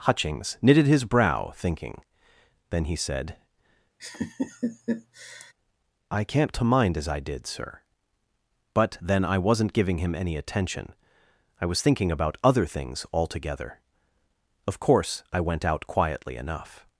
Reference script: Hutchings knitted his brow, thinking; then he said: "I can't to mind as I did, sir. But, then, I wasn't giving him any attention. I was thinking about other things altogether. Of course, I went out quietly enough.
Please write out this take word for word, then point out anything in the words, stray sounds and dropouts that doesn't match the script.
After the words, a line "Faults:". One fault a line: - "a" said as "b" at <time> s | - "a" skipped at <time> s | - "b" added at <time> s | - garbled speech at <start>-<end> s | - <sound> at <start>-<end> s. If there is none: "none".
Hutchings knitted his brow, thinking; then he said: "I can't to mind as I did, sir. But, then, I wasn't giving him any attention. I was thinking about other things altogether. Of course, I went out quietly enough.
Faults:
- laugh at 4.0-5.5 s